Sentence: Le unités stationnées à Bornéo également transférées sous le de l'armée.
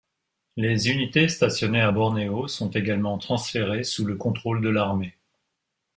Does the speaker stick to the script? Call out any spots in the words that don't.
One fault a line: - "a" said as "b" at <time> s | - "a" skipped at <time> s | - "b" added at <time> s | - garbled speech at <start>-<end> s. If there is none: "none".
- "Le" said as "Les" at 0.6 s
- "sont" added at 2.5 s
- "contrôle" added at 4.1 s